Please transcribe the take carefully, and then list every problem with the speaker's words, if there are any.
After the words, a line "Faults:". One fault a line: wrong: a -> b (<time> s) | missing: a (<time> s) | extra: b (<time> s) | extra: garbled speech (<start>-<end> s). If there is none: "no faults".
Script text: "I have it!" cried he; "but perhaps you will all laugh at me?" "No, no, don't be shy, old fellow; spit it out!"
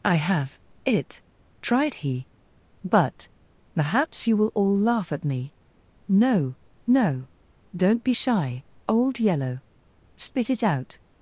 "I have it!" tried he; "but perhaps you will all laugh at me?" "No, no, don't be shy, old yellow; spit it out!"
Faults:
wrong: cried -> tried (1.6 s)
wrong: fellow -> yellow (9.2 s)